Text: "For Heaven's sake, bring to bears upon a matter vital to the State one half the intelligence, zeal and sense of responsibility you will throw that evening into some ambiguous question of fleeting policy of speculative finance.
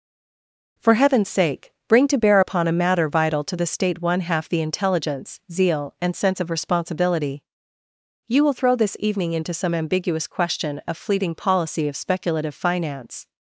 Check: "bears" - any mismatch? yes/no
yes